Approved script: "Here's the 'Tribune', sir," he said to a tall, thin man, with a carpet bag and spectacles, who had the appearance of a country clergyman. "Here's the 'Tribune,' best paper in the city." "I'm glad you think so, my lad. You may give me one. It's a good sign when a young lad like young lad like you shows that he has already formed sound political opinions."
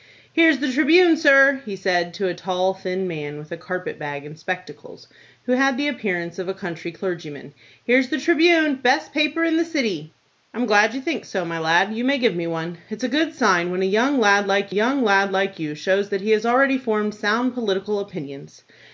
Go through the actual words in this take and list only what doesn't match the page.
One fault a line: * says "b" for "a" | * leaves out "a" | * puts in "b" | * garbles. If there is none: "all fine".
all fine